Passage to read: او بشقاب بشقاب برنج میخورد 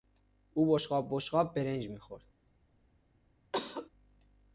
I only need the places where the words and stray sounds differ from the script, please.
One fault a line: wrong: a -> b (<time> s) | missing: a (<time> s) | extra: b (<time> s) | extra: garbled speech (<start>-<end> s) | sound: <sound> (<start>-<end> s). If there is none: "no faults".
sound: cough (3.5-3.9 s)